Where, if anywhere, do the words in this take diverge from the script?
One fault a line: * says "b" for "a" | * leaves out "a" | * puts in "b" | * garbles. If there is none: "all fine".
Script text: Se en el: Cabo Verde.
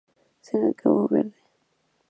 all fine